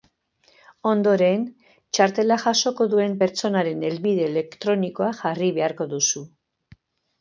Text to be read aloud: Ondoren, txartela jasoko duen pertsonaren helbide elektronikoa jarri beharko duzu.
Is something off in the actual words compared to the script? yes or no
no